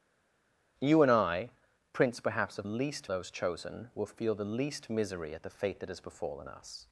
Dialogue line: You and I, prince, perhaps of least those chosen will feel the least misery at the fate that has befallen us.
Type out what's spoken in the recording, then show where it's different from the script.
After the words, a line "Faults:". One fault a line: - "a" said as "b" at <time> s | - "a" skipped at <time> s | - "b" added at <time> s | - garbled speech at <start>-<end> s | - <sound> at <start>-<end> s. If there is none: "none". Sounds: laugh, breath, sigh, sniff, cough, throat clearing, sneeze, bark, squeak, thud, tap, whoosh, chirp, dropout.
You and I, prince, perhaps of least those chosen will feel the least misery at the fate that has befallen us.
Faults:
none